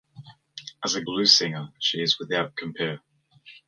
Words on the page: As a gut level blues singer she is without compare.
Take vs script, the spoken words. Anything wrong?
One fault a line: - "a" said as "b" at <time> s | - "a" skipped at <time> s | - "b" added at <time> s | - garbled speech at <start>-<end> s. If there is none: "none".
- "gut level" skipped at 1.0 s